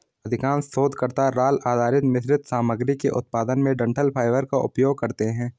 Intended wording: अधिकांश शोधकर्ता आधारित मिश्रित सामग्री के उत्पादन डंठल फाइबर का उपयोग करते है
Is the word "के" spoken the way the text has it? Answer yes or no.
yes